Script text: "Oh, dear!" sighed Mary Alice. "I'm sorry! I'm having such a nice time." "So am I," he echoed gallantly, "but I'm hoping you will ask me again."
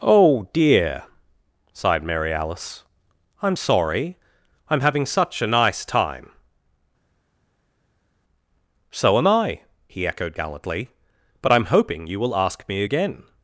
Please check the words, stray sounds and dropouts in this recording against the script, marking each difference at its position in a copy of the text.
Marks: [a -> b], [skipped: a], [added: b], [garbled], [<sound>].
"Oh, dear!" sighed Mary Alice. "I'm sorry! I'm having such a nice time." "So am I," he echoed gallantly, "but I'm hoping you will ask me again."